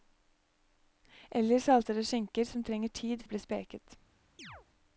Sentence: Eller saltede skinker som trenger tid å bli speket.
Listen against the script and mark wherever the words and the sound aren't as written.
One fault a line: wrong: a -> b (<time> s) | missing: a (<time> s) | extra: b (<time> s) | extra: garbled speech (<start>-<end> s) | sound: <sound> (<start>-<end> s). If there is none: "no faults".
sound: chirp (4.4-4.7 s)